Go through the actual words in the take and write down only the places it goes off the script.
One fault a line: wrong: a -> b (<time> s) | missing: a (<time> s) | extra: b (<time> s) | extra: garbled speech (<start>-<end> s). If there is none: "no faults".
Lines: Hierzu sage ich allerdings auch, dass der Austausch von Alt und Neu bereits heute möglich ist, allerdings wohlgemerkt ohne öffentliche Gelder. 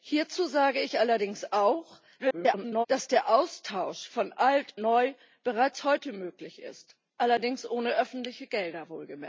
extra: garbled speech (2.2-2.9 s)
missing: und (4.7 s)